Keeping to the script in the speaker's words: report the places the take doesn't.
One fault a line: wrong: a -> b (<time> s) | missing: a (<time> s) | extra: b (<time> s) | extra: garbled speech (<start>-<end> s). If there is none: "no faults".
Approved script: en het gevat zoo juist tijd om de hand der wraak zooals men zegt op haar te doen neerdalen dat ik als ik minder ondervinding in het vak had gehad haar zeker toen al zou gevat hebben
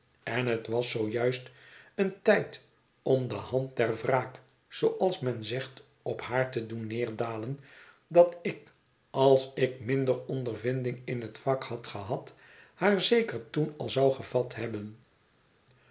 wrong: gevat -> was (0.7 s)
extra: een (1.9 s)